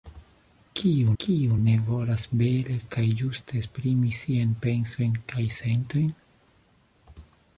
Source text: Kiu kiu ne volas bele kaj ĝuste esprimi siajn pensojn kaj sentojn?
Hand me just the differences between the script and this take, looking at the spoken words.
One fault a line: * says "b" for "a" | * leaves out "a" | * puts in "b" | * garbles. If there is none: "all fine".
all fine